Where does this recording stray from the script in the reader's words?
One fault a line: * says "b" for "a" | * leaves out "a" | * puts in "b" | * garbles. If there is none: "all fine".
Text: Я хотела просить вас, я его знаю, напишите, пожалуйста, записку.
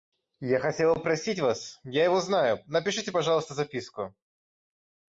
all fine